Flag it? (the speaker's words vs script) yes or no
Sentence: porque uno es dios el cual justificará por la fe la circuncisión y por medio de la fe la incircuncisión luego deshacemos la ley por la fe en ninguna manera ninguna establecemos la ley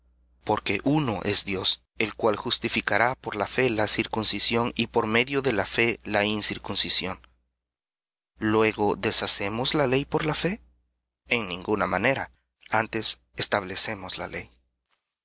yes